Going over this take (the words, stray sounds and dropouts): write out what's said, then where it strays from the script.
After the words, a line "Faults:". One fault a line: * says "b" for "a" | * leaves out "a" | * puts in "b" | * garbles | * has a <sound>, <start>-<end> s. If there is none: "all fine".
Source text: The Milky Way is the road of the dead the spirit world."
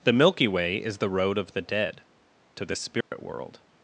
The Milky Way is the road of the dead to the spirit world."
Faults:
* puts in "to"
* has a dropout, 3.0-3.1 s